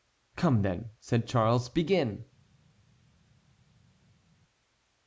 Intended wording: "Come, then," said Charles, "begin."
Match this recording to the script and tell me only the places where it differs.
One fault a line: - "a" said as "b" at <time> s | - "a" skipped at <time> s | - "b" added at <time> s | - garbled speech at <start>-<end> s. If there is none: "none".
none